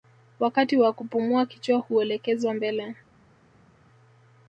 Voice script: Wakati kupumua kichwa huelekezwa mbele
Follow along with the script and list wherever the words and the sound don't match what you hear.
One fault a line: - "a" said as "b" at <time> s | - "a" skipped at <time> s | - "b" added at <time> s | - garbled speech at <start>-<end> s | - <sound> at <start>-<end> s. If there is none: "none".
- "wa" added at 0.8 s